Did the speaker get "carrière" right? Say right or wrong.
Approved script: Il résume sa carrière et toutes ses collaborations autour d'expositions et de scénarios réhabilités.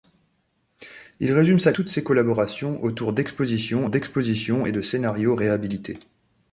wrong